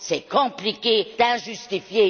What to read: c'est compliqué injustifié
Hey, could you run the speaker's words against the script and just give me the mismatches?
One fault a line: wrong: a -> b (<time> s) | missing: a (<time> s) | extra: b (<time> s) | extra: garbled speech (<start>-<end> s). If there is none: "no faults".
no faults